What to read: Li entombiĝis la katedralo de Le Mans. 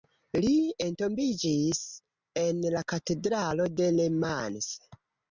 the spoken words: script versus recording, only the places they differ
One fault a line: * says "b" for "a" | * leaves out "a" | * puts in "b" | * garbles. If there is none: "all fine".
* puts in "en"